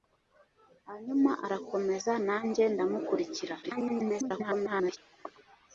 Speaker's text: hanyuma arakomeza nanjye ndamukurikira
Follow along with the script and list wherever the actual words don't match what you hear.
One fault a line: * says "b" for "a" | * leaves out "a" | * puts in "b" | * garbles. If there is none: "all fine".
* garbles